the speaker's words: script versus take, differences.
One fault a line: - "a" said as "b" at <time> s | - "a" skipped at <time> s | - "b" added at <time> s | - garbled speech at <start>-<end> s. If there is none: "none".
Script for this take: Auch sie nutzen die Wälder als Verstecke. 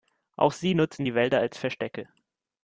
none